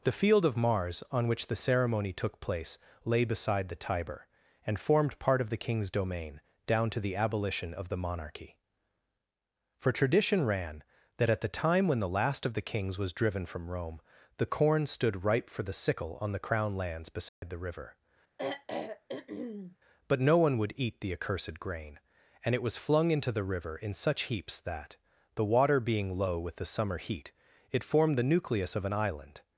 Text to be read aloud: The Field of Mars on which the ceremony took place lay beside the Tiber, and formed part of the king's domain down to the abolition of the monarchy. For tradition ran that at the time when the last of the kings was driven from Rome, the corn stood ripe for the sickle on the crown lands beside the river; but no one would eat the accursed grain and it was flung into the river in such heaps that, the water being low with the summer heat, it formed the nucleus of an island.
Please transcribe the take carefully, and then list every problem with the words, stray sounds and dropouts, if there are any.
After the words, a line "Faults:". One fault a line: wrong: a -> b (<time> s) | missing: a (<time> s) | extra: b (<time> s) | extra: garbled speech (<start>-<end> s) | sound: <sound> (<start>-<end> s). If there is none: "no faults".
The Field of Mars on which the ceremony took place lay beside the Tiber, and formed part of the king's domain down to the abolition of the monarchy. For tradition ran that at the time when the last of the kings was driven from Rome, the corn stood ripe for the sickle on the crown lands beside the river; but no one would eat the accursed grain and it was flung into the river in such heaps that, the water being low with the summer heat, it formed the nucleus of an island.
Faults:
sound: dropout (17.3-17.4 s)
sound: throat clearing (18.4-19.8 s)